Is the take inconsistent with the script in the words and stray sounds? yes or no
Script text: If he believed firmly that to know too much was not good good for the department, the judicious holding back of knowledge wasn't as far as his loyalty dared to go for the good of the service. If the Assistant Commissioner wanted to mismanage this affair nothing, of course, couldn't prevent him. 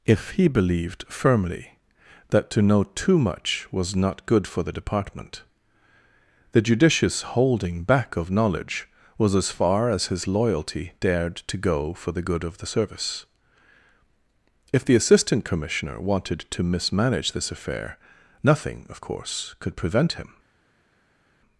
yes